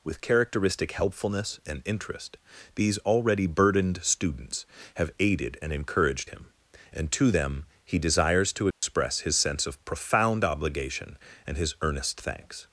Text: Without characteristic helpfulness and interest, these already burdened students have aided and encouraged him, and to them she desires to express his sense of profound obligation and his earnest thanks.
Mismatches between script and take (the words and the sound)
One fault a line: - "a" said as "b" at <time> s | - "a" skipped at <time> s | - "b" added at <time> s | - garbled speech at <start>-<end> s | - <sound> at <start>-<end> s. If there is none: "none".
- "Without" said as "With" at 0.0 s
- "she" said as "he" at 7.9 s
- dropout at 8.7-8.8 s